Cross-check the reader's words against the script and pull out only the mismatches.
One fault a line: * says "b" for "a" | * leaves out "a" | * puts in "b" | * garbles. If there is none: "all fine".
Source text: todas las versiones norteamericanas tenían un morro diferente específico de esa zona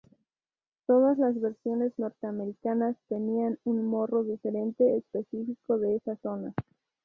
all fine